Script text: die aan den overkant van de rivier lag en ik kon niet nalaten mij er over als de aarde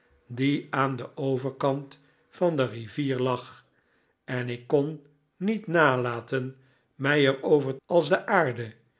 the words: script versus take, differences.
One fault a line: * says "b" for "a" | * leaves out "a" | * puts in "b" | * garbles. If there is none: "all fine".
all fine